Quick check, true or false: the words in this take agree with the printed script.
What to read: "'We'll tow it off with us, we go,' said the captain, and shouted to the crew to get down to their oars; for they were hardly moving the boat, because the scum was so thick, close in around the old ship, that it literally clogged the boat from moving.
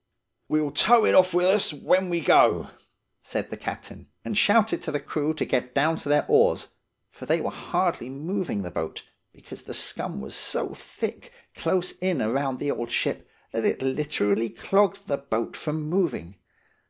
false